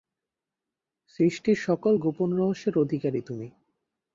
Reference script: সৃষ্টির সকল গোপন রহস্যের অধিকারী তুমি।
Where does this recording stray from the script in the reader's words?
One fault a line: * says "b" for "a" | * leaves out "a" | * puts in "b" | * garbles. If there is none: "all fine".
all fine